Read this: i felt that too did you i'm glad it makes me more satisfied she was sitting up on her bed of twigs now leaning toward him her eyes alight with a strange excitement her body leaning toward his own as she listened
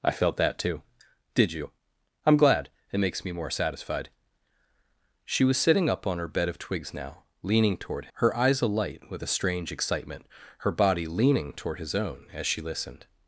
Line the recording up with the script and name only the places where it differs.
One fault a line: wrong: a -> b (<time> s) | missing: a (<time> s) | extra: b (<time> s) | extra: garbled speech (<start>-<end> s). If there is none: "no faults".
missing: him (8.1 s)